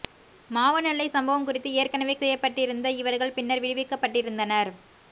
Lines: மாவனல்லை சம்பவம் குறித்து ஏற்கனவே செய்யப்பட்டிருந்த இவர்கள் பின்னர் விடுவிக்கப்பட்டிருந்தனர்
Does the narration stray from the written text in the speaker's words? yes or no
no